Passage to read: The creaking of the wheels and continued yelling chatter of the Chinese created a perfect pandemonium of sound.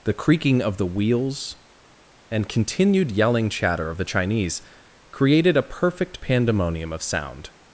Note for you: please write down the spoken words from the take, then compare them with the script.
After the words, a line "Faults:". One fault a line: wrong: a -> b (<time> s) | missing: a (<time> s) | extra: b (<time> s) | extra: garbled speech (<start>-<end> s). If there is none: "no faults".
The creaking of the wheels and continued yelling chatter of the Chinese created a perfect pandemonium of sound.
Faults:
no faults